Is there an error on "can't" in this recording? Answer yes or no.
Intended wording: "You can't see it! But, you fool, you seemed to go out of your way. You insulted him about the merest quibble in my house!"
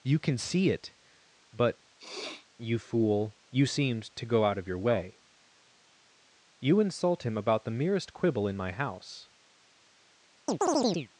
yes